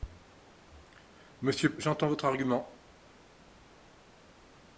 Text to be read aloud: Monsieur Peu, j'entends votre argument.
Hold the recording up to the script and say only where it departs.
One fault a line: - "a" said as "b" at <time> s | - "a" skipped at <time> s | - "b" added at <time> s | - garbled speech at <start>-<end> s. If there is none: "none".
- "Peu" skipped at 1.8 s